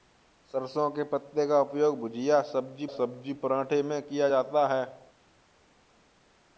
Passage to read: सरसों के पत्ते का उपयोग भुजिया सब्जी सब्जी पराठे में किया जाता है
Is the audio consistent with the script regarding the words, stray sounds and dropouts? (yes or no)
yes